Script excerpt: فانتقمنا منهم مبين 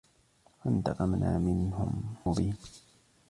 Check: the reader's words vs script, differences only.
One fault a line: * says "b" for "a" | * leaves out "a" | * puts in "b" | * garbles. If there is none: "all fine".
all fine